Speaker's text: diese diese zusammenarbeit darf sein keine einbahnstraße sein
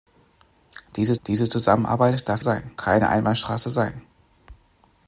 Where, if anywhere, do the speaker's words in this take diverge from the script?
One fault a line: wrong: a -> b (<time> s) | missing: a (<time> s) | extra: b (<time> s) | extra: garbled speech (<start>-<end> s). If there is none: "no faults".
no faults